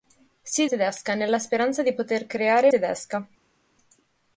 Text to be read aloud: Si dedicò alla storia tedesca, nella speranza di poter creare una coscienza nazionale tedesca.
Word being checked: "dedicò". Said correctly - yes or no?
no